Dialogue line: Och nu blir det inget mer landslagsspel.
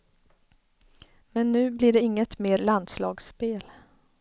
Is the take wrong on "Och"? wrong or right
wrong